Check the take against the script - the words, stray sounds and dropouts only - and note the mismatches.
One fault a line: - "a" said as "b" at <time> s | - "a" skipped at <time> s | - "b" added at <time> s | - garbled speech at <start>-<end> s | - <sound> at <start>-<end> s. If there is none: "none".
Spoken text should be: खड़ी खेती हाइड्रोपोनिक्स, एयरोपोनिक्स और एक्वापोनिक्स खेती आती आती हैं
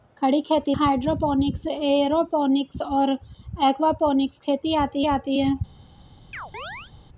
- chirp at 6.3-6.9 s